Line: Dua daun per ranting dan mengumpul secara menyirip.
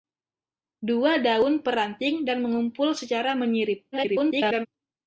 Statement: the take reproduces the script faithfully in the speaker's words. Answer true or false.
false